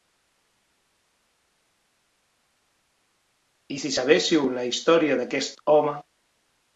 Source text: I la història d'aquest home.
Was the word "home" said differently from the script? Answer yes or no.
no